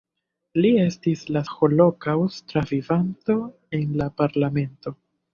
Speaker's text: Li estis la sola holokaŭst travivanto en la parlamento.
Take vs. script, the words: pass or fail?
fail